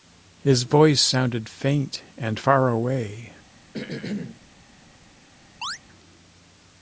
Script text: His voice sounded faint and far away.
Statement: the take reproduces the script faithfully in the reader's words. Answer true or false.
true